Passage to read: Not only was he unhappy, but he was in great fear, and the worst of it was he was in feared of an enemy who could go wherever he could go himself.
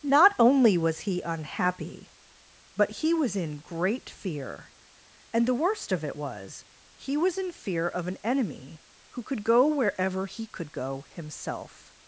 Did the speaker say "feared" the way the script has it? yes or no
no